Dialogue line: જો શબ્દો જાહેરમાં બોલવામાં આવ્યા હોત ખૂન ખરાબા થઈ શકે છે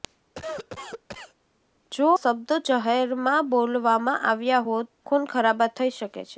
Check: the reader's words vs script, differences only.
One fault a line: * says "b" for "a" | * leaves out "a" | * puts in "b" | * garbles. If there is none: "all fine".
all fine